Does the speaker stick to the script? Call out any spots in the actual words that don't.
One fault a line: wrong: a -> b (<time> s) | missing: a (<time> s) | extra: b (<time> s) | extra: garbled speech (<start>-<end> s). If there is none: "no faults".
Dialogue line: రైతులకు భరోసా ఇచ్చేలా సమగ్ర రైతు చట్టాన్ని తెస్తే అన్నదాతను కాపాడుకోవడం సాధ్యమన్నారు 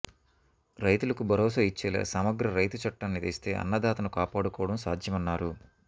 no faults